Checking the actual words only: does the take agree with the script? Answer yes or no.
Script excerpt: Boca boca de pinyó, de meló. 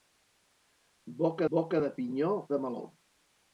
yes